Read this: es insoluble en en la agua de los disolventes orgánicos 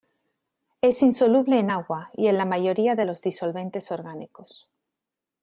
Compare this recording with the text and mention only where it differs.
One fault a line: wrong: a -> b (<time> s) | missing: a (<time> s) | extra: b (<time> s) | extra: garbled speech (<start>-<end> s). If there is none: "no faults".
extra: agua y (1.7 s)
wrong: agua -> mayoría (2.5 s)